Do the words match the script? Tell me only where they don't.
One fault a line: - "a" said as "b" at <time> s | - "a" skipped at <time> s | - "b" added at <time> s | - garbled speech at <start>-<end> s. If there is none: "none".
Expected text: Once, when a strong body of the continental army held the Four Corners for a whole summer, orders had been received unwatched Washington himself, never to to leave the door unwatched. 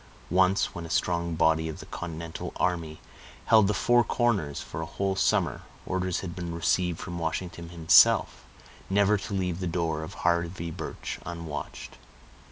- "unwatched" said as "from" at 7.0 s
- "to" skipped at 9.3 s
- "of Harvey Birch" added at 10.0 s